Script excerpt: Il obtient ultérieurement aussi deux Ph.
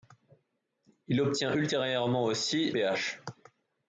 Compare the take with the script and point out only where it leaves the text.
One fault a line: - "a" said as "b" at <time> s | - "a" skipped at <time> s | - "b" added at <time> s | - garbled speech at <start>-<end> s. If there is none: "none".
- "deux" skipped at 2.7 s